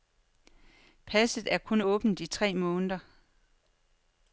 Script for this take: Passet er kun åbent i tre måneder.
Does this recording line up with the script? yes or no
yes